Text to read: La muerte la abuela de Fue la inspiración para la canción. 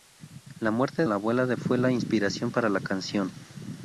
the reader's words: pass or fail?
pass